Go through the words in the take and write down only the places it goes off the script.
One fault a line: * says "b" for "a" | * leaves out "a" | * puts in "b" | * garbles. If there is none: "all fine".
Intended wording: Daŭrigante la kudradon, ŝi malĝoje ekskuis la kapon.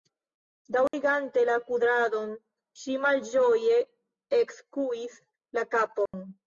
all fine